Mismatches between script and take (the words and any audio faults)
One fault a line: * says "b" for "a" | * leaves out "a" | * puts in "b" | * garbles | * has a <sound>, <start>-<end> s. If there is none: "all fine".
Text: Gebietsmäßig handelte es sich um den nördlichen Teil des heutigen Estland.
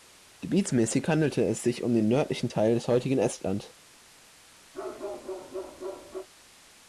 * has a bark, 4.7-6.3 s